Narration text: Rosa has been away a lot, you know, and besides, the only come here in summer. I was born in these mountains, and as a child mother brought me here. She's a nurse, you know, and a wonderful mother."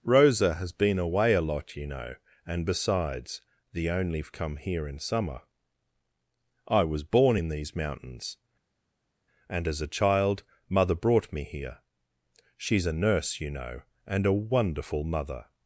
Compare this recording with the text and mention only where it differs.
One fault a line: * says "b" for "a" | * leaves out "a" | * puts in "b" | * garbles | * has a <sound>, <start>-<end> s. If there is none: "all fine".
all fine